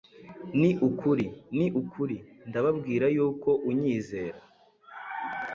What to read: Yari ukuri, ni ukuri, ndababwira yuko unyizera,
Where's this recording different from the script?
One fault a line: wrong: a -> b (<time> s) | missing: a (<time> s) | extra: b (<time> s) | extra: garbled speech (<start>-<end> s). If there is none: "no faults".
wrong: Yari -> Ni (0.6 s)